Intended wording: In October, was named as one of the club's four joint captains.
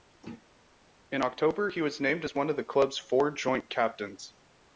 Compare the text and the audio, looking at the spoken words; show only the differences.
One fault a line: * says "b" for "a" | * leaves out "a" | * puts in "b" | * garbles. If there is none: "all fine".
* puts in "he"